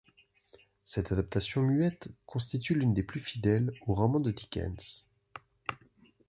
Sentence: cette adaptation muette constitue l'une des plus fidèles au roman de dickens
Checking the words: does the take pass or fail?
pass